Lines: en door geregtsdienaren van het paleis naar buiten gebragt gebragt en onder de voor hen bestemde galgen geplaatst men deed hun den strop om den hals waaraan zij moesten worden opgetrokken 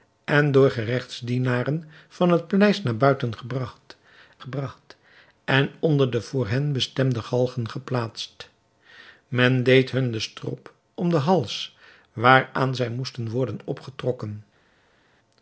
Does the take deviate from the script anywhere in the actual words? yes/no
no